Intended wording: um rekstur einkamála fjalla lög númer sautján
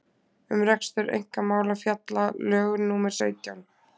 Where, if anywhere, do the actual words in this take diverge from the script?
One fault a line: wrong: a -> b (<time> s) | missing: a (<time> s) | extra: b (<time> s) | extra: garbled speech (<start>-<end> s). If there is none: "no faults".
no faults